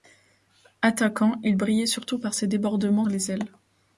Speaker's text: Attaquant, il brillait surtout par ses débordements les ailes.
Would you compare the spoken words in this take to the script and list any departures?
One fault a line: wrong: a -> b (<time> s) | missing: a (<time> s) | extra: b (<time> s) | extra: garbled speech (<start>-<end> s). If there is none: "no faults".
no faults